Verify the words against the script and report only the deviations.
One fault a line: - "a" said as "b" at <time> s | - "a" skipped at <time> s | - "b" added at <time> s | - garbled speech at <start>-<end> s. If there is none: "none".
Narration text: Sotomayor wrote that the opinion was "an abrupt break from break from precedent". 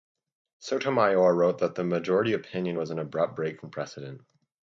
- "majority" added at 1.8 s
- "break from" skipped at 3.7 s